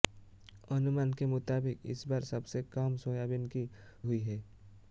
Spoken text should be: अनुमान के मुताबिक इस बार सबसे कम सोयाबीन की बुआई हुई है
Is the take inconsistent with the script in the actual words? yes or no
yes